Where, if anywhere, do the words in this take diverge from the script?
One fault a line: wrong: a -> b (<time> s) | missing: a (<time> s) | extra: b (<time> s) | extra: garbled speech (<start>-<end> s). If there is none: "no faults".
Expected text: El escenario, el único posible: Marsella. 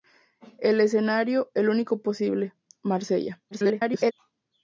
extra: garbled speech (3.5-4.1 s)